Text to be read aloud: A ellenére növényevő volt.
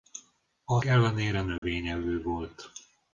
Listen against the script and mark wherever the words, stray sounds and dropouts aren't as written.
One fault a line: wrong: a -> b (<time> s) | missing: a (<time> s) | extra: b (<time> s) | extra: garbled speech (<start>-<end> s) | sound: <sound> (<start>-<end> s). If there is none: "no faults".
sound: dropout (1.6-1.6 s)